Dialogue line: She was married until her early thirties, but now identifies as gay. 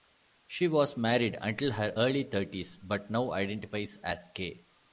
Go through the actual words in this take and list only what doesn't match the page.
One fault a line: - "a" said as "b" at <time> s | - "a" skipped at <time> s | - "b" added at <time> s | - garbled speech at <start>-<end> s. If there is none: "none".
none